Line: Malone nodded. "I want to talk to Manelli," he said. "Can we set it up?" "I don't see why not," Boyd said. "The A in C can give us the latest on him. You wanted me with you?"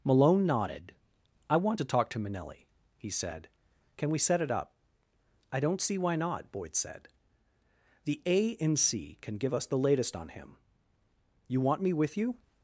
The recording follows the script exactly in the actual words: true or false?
false